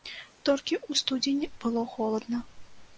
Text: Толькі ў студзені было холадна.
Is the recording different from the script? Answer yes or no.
no